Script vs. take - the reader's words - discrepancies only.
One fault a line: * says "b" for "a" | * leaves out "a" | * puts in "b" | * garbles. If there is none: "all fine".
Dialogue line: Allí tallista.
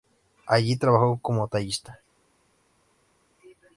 * puts in "trabajó como"